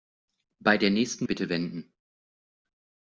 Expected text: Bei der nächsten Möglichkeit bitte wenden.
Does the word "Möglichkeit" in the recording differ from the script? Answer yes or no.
yes